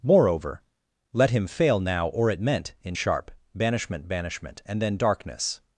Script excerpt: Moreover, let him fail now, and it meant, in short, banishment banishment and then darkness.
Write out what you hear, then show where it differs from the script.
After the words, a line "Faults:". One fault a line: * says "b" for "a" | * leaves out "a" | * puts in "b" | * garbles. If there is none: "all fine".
Moreover, let him fail now, or it meant, in sharp, banishment banishment and then darkness.
Faults:
* says "or" for "and"
* says "sharp" for "short"